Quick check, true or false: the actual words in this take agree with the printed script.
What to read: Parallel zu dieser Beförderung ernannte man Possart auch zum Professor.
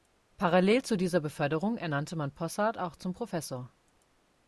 true